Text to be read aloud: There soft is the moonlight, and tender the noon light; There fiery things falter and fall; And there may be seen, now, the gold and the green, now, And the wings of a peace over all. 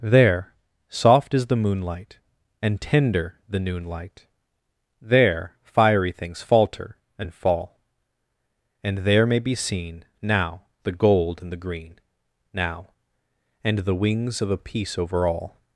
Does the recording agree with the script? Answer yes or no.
yes